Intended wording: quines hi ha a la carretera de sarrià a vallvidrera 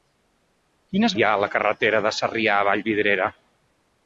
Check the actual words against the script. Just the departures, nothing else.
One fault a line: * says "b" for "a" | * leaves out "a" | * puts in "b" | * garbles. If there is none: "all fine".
all fine